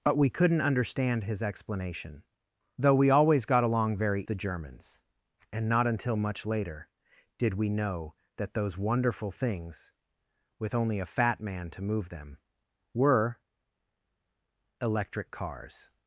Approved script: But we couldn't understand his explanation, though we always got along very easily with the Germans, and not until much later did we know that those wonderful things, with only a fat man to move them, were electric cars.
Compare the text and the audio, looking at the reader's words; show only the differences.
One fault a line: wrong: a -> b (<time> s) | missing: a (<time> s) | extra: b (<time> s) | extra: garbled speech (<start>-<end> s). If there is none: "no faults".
missing: easily with (4.2 s)